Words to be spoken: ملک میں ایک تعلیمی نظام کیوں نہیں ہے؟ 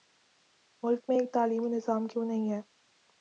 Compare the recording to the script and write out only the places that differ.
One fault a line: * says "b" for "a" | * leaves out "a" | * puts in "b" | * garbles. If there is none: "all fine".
all fine